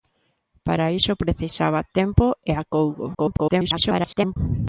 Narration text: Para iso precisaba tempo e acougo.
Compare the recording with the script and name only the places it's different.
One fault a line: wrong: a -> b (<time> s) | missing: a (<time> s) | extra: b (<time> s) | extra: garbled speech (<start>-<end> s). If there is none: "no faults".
extra: garbled speech (3.1-4.4 s)